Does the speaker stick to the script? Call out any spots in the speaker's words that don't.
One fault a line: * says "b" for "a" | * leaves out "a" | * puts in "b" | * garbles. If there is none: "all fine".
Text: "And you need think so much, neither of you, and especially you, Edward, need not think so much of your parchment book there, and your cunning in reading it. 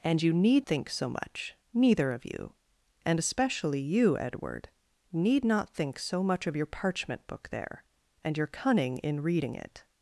all fine